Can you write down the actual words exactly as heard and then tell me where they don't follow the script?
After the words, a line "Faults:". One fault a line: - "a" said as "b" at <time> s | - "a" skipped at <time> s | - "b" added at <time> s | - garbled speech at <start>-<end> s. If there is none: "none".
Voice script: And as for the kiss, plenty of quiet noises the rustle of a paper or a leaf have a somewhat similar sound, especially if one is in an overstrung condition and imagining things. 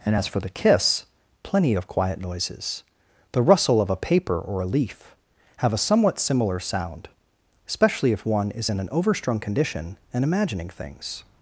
And as for the kiss, plenty of quiet noises the rustle of a paper or a leaf have a somewhat similar sound, especially if one is in an overstrung condition and imagining things.
Faults:
none